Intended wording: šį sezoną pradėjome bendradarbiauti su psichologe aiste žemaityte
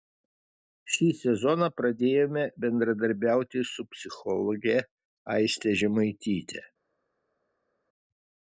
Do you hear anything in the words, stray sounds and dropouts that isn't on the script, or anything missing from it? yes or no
no